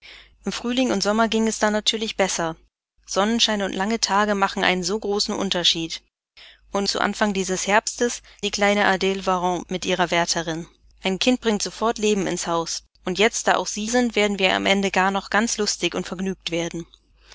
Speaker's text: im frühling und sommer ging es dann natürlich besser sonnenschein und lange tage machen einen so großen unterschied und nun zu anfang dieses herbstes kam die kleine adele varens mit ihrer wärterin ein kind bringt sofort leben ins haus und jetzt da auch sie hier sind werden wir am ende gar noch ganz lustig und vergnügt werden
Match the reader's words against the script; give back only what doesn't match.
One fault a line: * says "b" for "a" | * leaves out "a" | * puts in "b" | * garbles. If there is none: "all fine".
* leaves out "nun"
* leaves out "kam"
* leaves out "hier"